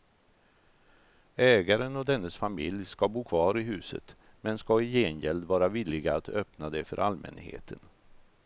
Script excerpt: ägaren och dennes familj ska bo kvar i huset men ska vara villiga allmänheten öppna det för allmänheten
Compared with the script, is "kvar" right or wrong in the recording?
right